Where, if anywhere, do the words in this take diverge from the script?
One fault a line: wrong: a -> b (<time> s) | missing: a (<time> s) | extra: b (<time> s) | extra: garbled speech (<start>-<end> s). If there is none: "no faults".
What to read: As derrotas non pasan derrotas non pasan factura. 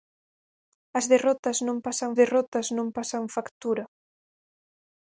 no faults